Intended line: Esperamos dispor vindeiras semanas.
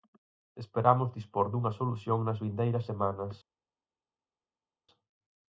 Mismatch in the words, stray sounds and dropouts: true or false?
true